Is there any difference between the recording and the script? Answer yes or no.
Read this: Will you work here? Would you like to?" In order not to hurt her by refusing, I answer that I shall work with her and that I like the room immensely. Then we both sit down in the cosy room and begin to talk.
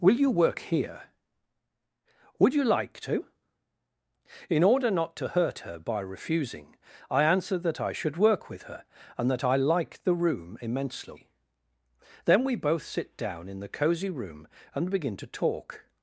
yes